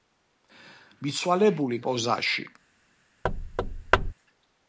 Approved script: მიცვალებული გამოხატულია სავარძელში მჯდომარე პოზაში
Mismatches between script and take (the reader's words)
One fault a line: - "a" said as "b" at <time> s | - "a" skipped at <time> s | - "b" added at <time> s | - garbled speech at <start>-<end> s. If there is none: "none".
- "გამოხატულია სავარძელში მჯდომარე" skipped at 1.8 s